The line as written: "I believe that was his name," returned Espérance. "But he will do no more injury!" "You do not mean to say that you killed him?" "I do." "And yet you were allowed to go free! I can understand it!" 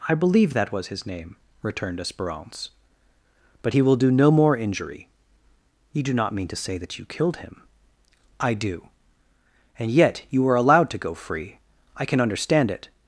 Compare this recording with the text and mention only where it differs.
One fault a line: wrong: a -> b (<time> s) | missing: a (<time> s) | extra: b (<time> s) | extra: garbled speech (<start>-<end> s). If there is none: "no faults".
no faults